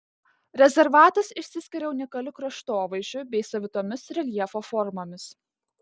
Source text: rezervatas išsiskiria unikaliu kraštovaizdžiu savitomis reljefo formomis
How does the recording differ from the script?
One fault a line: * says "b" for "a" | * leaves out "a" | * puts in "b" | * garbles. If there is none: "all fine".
* puts in "bei"